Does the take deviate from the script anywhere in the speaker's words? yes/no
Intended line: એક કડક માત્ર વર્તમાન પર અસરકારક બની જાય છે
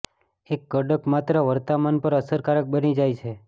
no